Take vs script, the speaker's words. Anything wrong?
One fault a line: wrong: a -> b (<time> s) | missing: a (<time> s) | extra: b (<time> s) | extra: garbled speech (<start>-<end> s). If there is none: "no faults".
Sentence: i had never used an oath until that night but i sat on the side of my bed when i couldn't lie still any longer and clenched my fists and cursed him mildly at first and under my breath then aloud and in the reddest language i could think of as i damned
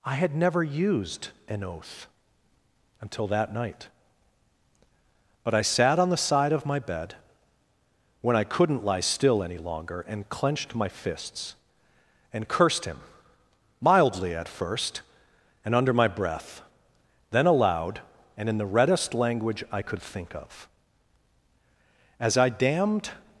no faults